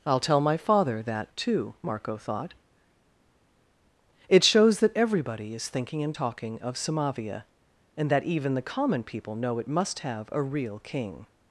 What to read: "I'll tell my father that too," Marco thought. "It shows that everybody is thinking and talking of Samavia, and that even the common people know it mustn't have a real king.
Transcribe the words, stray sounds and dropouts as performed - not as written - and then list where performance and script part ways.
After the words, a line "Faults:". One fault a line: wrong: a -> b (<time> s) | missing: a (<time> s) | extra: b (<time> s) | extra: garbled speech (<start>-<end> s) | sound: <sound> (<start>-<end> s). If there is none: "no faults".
"I'll tell my father that too," Marco thought. "It shows that everybody is thinking and talking of Samavia, and that even the common people know it must have a real king.
Faults:
wrong: mustn't -> must (9.7 s)